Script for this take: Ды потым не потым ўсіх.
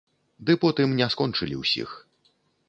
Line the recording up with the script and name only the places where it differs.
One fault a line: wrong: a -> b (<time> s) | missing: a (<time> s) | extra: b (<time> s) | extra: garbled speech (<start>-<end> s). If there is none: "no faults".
wrong: потым -> скончылі (1.2 s)